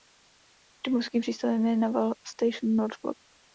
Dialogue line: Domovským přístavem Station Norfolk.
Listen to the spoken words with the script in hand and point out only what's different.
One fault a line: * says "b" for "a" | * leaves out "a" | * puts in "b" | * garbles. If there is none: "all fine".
* puts in "je Naval"